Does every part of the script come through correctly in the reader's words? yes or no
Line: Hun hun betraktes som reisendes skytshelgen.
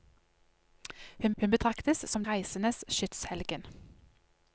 yes